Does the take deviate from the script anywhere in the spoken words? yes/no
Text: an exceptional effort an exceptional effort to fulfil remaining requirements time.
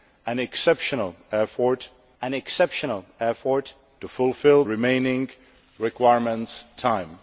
no